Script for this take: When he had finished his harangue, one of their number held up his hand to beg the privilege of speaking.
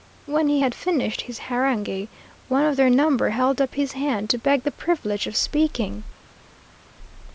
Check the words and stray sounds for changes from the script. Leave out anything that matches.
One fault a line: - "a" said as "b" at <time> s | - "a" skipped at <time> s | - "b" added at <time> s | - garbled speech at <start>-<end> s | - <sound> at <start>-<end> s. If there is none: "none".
none